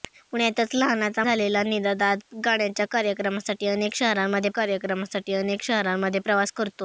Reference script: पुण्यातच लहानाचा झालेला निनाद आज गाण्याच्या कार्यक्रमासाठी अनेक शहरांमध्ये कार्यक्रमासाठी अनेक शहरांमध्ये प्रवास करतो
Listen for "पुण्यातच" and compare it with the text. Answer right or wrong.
right